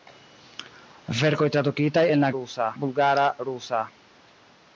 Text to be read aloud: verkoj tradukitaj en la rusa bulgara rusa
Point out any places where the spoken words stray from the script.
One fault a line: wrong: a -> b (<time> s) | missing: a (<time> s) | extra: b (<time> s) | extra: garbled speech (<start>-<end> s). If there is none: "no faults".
no faults